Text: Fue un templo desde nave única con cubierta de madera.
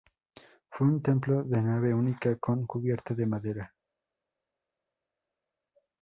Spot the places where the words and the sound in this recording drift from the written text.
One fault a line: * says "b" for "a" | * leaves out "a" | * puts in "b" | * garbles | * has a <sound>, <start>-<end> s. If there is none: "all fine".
* says "de" for "desde"